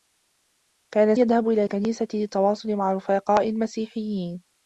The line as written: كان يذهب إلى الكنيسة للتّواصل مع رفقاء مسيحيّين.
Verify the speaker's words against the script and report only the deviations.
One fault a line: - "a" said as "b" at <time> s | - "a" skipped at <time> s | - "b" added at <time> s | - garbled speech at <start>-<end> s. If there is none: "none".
none